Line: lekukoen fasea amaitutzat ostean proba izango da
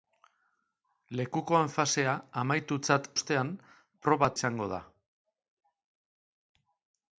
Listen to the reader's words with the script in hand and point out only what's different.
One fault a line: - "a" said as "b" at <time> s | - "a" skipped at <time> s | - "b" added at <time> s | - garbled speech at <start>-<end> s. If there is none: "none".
none